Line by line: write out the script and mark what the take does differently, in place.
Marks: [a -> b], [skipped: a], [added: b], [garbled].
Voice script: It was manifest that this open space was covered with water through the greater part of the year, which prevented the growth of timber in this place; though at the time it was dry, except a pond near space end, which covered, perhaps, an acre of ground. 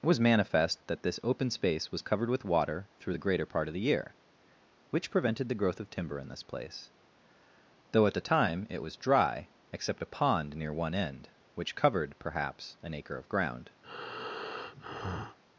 It was manifest that this open space was covered with water through the greater part of the year, which prevented the growth of timber in this place; though at the time it was dry, except a pond near [space -> one] end, which covered, perhaps, an acre of ground.